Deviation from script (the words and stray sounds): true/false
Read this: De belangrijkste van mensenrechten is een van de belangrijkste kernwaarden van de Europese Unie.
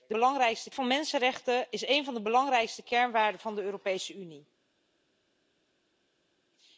false